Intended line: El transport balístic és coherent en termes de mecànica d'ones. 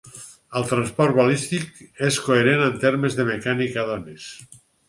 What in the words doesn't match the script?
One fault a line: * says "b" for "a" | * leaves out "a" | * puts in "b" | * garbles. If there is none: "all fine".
all fine